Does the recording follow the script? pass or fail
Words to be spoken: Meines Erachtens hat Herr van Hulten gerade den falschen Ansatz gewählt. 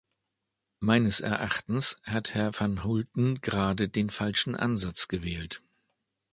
pass